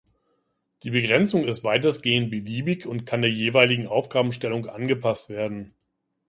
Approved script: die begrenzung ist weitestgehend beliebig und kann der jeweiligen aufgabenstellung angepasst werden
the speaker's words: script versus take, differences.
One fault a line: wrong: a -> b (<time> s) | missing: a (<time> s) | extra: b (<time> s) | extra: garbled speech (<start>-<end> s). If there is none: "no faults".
no faults